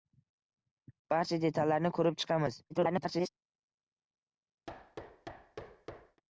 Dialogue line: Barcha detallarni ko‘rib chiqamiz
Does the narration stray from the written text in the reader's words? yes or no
yes